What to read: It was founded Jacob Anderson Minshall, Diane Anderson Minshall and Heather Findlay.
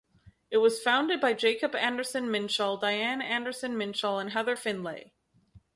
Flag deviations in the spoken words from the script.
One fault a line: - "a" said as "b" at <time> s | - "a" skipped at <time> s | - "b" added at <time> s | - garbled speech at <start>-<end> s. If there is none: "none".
- "by" added at 1.2 s